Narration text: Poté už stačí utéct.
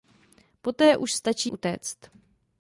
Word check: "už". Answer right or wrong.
right